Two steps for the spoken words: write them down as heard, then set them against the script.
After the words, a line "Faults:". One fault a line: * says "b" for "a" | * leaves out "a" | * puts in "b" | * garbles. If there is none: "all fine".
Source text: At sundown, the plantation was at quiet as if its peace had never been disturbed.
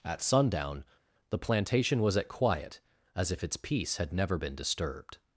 At sundown, the plantation was at quiet as if its peace had never been disturbed.
Faults:
all fine